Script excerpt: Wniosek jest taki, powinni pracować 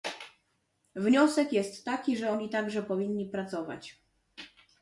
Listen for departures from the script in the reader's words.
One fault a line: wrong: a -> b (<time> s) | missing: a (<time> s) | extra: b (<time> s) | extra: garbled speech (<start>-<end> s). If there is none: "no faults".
extra: że oni także (2.2 s)